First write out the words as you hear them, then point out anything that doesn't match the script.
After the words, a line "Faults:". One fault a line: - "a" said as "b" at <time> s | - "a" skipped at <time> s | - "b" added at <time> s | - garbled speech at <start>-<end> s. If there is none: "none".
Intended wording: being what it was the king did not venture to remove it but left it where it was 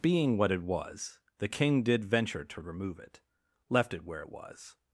being what it was the king did venture to remove it left it where it was
Faults:
- "not" skipped at 2.0 s
- "but" skipped at 3.2 s